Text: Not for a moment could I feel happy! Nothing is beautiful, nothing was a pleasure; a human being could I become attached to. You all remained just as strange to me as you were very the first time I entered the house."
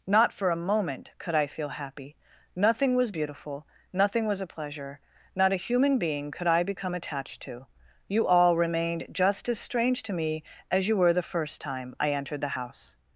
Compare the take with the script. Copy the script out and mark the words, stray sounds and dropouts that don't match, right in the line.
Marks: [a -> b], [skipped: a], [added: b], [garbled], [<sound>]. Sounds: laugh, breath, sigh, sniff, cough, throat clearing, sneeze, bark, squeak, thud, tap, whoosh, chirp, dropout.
Not for a moment could I feel happy! Nothing [is -> was] beautiful, nothing was a pleasure; [added: not] a human being could I become attached to. You all remained just as strange to me as you were [skipped: very] the first time I entered the house."